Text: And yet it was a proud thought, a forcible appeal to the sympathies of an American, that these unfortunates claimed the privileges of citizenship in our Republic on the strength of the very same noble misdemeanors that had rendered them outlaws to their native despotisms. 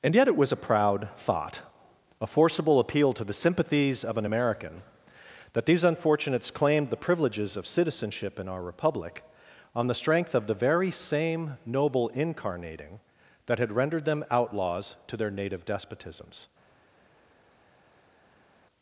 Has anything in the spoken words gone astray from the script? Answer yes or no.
yes